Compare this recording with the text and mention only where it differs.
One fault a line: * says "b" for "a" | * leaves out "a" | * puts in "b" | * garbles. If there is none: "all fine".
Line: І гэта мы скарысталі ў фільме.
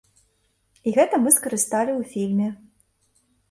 all fine